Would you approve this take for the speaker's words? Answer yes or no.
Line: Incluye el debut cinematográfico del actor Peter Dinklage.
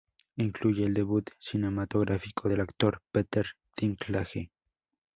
yes